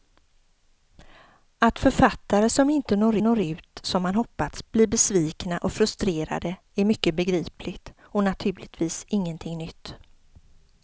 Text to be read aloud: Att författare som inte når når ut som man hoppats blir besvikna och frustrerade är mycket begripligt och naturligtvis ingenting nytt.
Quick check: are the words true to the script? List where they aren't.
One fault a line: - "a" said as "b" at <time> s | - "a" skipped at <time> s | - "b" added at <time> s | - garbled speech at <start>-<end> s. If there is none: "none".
none